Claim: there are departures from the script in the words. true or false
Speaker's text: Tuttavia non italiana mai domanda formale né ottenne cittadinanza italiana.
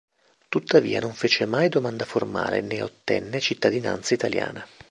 true